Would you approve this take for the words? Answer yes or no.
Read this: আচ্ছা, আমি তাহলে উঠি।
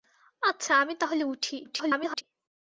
no